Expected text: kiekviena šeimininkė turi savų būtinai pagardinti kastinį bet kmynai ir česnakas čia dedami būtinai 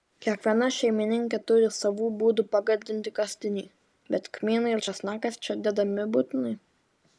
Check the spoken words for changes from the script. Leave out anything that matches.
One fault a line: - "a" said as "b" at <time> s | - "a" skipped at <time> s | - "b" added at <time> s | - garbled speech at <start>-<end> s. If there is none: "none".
- "būtinai" said as "būdų" at 2.2 s